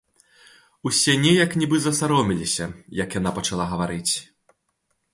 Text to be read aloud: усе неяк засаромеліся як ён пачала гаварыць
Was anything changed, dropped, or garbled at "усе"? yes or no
no